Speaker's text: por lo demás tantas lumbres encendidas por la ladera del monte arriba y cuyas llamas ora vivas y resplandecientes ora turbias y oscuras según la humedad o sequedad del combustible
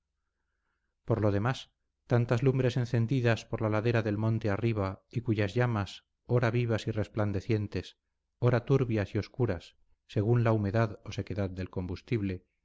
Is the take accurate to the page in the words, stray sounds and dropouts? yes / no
yes